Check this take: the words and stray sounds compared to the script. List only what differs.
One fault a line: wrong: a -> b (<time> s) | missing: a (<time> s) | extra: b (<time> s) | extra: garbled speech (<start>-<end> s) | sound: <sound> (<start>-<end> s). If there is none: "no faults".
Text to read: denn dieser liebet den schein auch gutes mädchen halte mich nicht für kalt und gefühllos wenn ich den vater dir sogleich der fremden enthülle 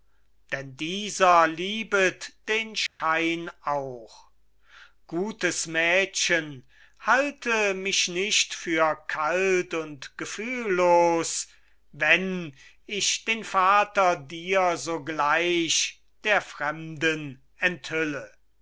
sound: dropout (2.9-3.0 s)